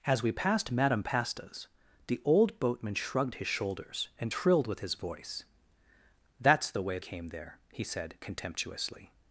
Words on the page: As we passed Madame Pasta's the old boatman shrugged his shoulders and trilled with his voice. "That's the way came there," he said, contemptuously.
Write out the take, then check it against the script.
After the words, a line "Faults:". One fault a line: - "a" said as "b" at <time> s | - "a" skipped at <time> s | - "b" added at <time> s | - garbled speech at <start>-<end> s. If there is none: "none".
As we passed Madame Pasta's the old boatman shrugged his shoulders and trilled with his voice. "That's the way came there," he said, contemptuously.
Faults:
none